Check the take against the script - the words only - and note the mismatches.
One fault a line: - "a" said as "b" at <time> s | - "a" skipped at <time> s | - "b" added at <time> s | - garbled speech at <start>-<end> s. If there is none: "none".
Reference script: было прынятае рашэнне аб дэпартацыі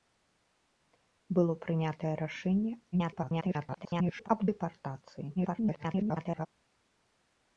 - garbled speech at 2.9-4.3 s
- garbled speech at 5.4-6.5 s